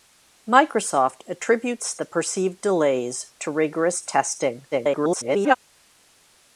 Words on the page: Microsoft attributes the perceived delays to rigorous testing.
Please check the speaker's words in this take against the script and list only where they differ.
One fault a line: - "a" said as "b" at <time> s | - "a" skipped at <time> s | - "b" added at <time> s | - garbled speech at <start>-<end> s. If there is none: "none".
- garbled speech at 4.7-5.6 s